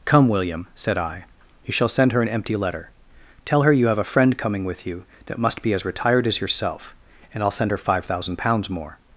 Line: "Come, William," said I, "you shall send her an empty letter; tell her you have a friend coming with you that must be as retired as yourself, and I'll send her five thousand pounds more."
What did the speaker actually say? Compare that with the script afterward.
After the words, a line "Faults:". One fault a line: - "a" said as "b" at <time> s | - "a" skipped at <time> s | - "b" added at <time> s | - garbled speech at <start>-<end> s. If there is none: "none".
"Come, William," said I, "you shall send her an empty letter; tell her you have a friend coming with you that must be as retired as yourself, and I'll send her five thousand pounds more."
Faults:
none